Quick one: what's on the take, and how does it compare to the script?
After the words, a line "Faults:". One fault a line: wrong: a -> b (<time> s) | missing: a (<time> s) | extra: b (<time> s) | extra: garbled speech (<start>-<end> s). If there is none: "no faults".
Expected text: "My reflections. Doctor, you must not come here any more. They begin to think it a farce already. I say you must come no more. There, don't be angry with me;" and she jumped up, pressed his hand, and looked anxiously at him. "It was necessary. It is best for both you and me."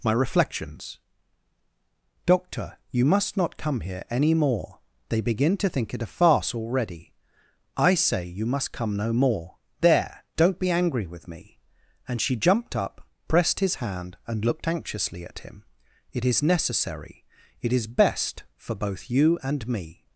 "My reflections. Doctor, you must not come here any more. They begin to think it a farce already. I say you must come no more. There, don't be angry with me;" and she jumped up, pressed his hand, and looked anxiously at him. "It is necessary. It is best for both you and me."
Faults:
wrong: was -> is (16.3 s)